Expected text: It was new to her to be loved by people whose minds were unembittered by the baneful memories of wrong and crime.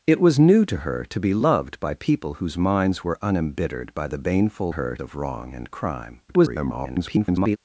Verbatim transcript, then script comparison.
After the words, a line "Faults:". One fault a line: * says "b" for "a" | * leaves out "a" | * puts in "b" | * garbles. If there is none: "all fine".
It was new to her to be loved by people whose minds were unembittered by the baneful her of wrong and crime. [garbled]
Faults:
* says "her" for "memories"
* garbles